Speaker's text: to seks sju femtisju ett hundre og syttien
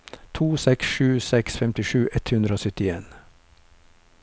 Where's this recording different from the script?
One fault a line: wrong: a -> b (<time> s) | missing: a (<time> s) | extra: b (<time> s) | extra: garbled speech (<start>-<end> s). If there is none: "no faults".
extra: seks (1.3 s)